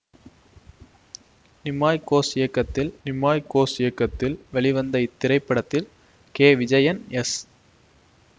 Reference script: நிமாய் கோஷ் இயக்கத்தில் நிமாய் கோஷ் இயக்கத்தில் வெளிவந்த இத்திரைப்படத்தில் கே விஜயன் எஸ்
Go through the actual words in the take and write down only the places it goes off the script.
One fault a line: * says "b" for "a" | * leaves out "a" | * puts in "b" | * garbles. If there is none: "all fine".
all fine